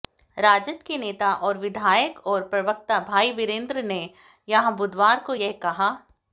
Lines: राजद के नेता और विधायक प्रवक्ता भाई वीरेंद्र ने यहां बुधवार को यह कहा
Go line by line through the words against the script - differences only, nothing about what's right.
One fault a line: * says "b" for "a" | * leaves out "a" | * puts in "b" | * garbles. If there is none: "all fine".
* puts in "और"